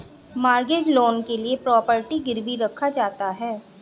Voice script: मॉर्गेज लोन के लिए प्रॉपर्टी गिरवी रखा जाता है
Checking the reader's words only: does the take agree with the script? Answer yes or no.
yes